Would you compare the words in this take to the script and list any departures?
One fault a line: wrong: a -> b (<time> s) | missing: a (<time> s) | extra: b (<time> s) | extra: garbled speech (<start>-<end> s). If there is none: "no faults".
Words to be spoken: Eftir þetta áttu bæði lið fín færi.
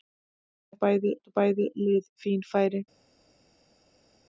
wrong: þetta -> bæði (0.9 s)